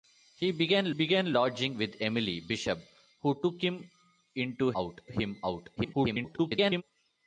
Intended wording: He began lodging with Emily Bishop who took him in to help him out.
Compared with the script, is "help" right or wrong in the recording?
wrong